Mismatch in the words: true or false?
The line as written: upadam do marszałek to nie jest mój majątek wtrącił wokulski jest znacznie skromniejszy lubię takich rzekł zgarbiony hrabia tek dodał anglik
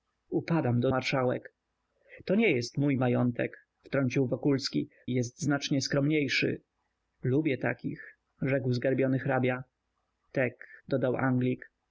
false